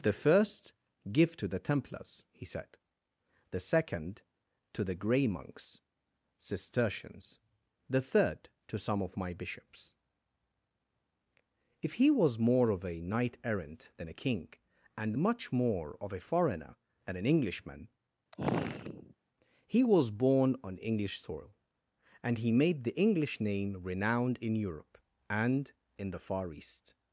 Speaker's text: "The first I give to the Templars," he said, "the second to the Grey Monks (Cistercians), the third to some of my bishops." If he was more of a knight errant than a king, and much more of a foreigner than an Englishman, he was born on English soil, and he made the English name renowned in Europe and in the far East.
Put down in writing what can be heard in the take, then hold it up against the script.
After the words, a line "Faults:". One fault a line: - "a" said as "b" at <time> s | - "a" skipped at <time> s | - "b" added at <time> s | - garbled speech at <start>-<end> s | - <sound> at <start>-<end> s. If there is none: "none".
"The first give to the Templars," he said, "the second to the Grey Monks (Cistercians), the third to some of my bishops." If he was more of a knight errant than a king, and much more of a foreigner than an Englishman, he was born on English soil, and he made the English name renowned in Europe and in the far East.
Faults:
- "I" skipped at 0.7 s
- sigh at 18.3-19.1 s